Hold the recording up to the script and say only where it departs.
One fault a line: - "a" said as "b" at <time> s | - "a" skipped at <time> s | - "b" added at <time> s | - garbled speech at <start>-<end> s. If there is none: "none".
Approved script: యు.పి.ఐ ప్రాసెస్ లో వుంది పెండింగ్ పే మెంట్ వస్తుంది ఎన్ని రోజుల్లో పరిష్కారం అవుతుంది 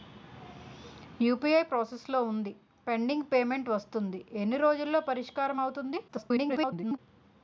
- garbled speech at 6.1-7.0 s